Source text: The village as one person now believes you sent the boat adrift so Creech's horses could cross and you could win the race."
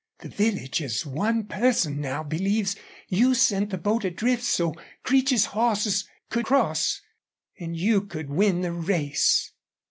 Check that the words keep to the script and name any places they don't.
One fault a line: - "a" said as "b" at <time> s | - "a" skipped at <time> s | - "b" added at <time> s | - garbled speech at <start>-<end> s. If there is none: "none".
none